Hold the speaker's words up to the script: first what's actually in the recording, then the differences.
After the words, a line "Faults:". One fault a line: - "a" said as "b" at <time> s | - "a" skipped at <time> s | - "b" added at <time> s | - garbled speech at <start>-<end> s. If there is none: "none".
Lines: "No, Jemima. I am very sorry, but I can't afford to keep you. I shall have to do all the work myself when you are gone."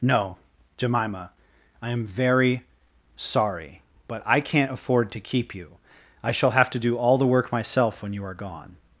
"No, Jemima. I am very sorry, but I can't afford to keep you. I shall have to do all the work myself when you are gone."
Faults:
none